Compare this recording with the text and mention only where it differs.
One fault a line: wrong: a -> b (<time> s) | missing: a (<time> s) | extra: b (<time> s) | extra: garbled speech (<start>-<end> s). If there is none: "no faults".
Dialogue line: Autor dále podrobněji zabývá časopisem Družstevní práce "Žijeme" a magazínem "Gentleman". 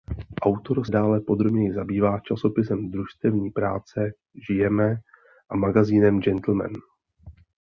no faults